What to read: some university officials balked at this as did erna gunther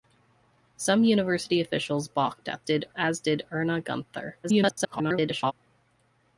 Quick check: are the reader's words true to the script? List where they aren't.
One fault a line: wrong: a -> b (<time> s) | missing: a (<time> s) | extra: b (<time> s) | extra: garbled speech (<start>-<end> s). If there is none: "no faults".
wrong: this -> did (2.6 s)
extra: garbled speech (4.4-5.5 s)